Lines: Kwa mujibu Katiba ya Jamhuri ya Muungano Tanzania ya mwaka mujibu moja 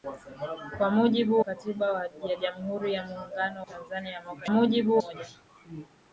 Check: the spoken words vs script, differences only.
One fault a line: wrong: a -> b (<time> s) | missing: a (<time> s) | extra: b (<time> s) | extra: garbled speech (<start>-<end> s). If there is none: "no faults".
no faults